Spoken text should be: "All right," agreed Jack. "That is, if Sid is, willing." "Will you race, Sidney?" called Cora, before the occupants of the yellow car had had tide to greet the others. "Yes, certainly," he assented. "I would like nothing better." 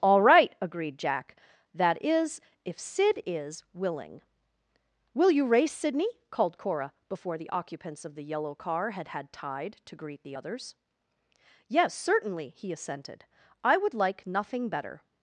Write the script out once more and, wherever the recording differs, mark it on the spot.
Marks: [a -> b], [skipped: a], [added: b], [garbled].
"All right," agreed Jack. "That is, if Sid is, willing." "Will you race, Sidney?" called Cora, before the occupants of the yellow car had had tide to greet the others. "Yes, certainly," he assented. "I would like nothing better."